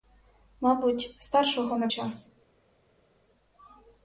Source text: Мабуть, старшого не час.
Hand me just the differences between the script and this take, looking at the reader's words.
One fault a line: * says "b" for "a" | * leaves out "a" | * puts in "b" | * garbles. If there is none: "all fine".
all fine